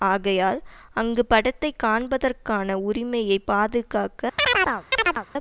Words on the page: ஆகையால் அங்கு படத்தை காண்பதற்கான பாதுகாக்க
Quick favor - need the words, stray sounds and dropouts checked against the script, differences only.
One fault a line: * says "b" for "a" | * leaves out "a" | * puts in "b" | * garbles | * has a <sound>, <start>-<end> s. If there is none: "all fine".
* puts in "உரிமையை"
* has a chirp, 4.4-5.3 s